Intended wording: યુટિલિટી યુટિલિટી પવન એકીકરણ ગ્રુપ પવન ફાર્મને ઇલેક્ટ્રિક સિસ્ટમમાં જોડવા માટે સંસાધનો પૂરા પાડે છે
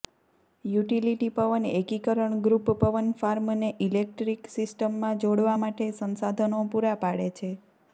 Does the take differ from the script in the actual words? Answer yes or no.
yes